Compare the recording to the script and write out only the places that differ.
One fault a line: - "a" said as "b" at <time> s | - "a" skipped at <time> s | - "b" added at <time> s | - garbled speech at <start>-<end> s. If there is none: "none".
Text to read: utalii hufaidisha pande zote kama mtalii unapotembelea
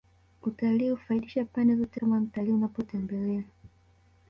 none